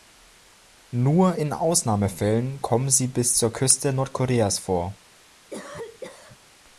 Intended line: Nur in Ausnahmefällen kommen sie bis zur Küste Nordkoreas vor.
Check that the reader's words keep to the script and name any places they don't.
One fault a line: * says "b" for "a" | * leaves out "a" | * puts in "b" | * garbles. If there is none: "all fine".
all fine